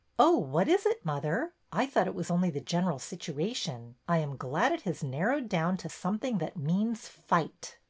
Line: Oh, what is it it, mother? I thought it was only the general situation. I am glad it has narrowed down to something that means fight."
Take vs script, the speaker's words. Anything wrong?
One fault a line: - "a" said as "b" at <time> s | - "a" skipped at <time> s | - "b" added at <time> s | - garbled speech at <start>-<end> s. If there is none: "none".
- "it" skipped at 1.1 s